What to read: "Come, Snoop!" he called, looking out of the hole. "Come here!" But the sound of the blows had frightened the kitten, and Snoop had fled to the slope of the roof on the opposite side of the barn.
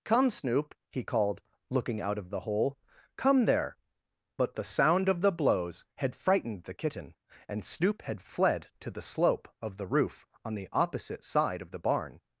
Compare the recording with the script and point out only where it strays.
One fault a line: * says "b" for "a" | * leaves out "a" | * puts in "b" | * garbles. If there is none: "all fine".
* says "there" for "here"